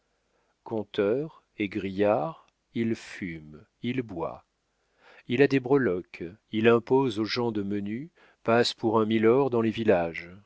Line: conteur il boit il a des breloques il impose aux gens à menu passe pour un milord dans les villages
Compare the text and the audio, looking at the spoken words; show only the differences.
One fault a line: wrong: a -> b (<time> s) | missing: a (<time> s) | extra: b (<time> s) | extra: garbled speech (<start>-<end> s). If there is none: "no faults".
extra: égrillard (1.6 s)
extra: fume il (3.0 s)
wrong: à -> de (7.5 s)